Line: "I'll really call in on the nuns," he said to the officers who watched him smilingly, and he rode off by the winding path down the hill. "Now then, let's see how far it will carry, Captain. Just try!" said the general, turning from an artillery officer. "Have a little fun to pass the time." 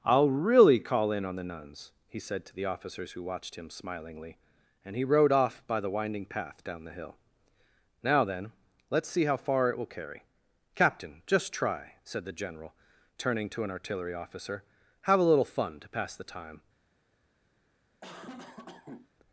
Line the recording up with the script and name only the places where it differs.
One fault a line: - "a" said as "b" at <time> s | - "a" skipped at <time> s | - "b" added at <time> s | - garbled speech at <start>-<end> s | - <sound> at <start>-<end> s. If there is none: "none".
- "from" said as "to" at 13.5 s
- cough at 18.0-19.1 s